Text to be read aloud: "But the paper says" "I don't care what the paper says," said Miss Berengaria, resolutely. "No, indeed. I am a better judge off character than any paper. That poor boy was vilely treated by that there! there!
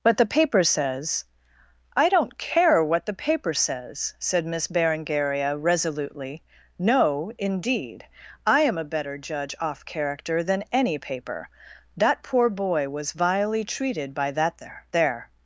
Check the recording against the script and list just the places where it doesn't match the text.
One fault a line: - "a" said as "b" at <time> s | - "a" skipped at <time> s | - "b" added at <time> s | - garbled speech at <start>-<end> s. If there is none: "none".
none